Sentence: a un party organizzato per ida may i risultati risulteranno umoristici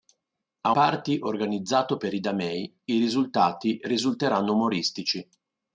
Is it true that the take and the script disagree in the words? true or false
true